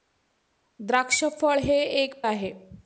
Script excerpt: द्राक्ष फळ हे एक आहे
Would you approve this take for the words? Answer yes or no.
yes